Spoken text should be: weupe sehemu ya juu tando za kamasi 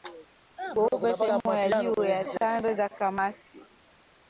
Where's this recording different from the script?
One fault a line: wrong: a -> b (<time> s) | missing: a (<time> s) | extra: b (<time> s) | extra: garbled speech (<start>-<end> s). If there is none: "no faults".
extra: ya (2.0 s)